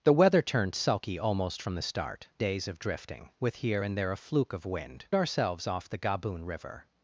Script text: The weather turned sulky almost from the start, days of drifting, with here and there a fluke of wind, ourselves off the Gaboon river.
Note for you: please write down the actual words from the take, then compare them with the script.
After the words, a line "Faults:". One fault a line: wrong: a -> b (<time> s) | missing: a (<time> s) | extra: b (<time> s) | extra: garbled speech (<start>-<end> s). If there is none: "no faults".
The weather turned sulky almost from the start, days of drifting, with here and there a fluke of wind, ourselves off the Gaboon river.
Faults:
no faults